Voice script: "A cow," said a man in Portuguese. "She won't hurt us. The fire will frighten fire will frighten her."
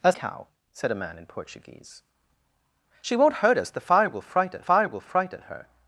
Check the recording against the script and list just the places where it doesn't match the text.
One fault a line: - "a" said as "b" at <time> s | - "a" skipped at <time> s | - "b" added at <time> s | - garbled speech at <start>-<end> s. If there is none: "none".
none